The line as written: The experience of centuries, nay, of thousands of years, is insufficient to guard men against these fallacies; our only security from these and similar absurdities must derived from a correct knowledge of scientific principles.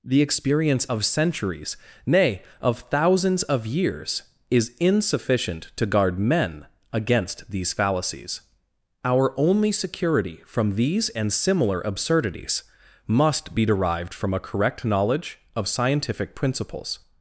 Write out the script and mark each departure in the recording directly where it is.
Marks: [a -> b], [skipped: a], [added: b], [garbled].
The experience of centuries, nay, of thousands of years, is insufficient to guard men against these fallacies; our only security from these and similar absurdities must [added: be] derived from a correct knowledge of scientific principles.